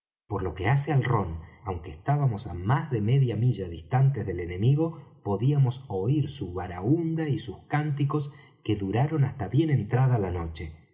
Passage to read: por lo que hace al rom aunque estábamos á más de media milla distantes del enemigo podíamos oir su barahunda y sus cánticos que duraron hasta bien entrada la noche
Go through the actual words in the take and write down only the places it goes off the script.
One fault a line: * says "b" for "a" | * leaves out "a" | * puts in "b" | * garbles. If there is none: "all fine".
all fine